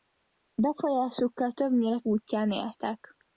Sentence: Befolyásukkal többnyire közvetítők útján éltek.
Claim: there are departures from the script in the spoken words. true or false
true